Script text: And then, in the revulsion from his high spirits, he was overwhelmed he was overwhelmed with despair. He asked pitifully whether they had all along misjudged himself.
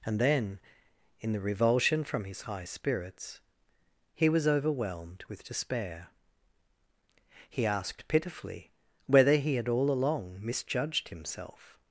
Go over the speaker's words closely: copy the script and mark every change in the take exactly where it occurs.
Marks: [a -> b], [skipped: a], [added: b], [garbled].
And then, in the revulsion from his high spirits, he was overwhelmed [skipped: he was overwhelmed] with despair. He asked pitifully whether [they -> he] had all along misjudged himself.